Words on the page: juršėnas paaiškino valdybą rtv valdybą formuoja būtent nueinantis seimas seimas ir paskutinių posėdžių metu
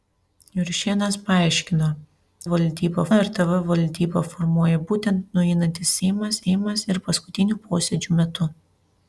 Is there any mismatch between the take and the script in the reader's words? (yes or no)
no